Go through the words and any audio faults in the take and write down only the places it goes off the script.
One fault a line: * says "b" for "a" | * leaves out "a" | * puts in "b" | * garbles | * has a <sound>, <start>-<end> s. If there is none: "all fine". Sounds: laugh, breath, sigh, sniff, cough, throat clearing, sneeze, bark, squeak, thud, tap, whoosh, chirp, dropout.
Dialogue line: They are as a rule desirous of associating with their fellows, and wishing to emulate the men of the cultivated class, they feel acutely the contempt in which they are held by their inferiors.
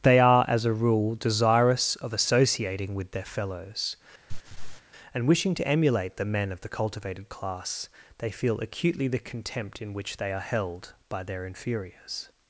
* has a laugh, 4.3-4.8 s